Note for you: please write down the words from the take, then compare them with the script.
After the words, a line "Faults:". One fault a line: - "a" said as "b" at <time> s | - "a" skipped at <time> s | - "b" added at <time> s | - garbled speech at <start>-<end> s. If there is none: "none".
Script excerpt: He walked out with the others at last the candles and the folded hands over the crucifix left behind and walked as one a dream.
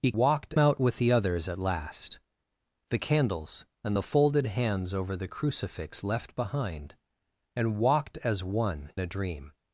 He walked out with the others at last the candles and the folded hands over the crucifix left behind and walked as one a dream.
Faults:
none